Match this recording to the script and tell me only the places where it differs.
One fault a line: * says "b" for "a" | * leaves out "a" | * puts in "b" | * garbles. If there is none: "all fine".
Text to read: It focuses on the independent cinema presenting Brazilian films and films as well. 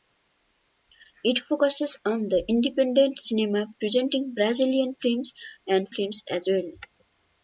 all fine